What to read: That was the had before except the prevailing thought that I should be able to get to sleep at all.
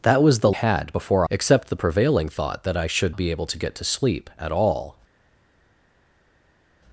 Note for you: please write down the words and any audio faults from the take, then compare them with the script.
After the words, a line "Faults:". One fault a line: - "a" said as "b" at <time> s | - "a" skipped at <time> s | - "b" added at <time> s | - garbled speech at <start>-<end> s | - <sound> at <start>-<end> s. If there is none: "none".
That was the had before except the prevailing thought that I should be able to get to sleep at all.
Faults:
none